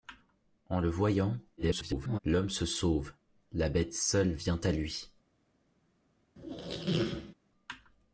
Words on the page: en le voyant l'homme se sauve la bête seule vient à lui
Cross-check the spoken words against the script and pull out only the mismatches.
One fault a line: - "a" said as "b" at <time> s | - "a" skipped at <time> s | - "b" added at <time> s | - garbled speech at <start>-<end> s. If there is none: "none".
- garbled speech at 1.6-2.2 s